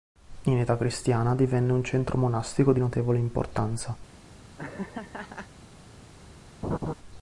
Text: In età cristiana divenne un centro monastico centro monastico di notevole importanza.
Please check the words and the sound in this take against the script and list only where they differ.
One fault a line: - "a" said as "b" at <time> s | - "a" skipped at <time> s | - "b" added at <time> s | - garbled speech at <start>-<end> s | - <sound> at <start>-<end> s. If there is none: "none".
- "centro monastico" skipped at 2.7 s
- laugh at 4.6-5.5 s
- laugh at 6.6-6.9 s